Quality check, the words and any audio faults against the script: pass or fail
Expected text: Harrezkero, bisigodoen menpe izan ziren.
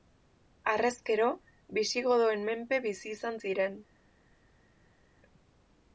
fail